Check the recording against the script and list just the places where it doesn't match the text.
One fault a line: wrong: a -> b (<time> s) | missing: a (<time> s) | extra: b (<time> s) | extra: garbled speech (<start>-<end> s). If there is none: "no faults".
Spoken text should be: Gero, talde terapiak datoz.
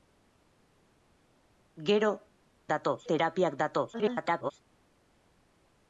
wrong: talde -> datoz (2.7 s)
extra: garbled speech (3.9-4.5 s)